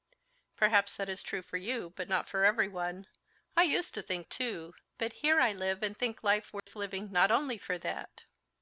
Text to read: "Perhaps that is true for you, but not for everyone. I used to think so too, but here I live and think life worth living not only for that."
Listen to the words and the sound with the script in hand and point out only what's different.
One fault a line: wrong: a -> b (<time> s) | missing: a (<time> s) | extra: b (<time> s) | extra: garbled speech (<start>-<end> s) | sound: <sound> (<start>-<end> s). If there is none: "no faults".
missing: so (4.3 s)
sound: dropout (6.6-6.7 s)